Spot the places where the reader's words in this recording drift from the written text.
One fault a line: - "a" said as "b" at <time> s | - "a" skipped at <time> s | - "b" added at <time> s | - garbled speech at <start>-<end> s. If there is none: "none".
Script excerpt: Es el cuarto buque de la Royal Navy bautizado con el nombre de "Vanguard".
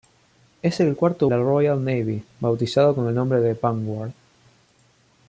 - "buque de" skipped at 1.3 s